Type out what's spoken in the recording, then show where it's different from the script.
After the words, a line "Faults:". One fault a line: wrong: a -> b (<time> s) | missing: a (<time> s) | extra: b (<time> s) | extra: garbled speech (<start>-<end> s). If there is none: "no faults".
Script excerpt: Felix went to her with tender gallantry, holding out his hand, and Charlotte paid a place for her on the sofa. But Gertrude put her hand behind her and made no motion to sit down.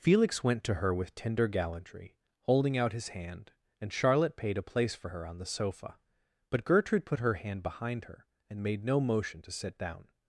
Felix went to her with tender gallantry, holding out his hand, and Charlotte paid a place for her on the sofa. But Gertrude put her hand behind her and made no motion to sit down.
Faults:
no faults